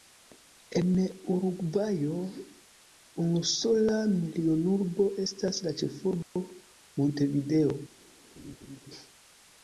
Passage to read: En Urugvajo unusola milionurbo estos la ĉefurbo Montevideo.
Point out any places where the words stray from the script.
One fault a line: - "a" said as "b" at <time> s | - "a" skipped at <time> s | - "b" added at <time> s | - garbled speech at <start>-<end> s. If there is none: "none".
- "estos" said as "estas" at 5.3 s